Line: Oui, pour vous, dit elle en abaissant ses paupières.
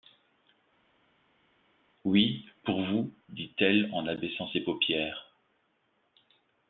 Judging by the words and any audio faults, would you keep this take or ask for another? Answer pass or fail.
pass